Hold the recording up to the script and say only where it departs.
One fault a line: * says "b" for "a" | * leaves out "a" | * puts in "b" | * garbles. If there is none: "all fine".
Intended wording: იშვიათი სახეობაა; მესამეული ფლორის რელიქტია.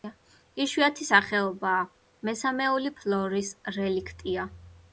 all fine